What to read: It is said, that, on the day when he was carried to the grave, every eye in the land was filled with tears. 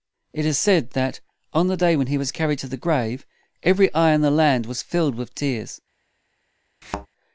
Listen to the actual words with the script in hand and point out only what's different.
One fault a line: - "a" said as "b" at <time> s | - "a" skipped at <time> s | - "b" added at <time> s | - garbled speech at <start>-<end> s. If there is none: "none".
none